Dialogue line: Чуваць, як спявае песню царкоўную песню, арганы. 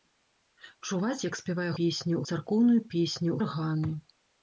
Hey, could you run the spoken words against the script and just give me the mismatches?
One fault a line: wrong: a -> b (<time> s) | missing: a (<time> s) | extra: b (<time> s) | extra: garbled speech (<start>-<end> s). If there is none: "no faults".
no faults